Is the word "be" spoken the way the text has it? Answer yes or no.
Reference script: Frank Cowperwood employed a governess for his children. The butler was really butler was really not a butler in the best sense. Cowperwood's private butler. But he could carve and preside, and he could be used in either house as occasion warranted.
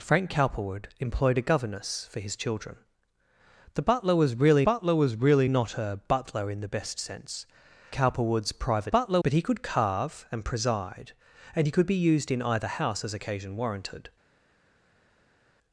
yes